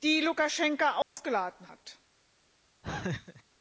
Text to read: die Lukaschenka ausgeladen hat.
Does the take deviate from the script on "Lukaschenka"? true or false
false